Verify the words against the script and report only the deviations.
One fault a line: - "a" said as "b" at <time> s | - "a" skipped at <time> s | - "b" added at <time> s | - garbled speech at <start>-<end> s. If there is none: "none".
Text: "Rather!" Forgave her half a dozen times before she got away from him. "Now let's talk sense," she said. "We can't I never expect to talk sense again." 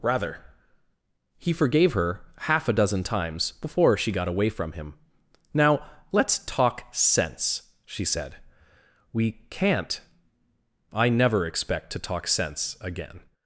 - "He" added at 1.4 s